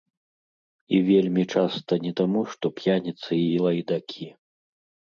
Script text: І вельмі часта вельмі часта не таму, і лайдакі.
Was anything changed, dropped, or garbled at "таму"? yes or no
yes